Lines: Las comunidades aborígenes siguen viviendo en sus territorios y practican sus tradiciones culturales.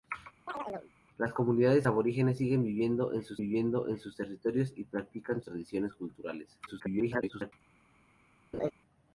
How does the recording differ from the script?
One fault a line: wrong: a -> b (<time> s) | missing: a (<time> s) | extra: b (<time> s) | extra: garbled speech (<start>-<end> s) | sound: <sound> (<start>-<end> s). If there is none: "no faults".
sound: chirp (0.5-0.9 s)
extra: viviendo en sus (3.4 s)
missing: sus (5.4 s)
extra: garbled speech (6.7-7.5 s)
sound: laugh (8.5-8.7 s)